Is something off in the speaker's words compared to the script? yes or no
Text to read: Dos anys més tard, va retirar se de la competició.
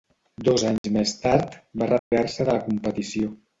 no